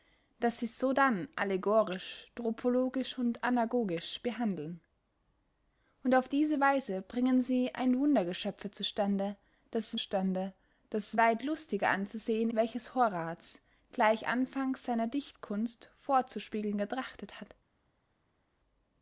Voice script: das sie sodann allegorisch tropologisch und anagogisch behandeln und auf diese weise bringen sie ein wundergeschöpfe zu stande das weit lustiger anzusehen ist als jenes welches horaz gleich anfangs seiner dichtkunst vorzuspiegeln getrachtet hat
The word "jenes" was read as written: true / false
false